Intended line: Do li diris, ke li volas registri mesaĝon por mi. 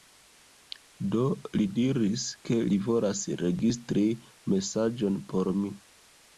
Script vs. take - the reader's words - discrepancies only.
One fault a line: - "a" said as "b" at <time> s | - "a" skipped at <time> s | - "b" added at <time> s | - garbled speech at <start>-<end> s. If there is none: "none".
none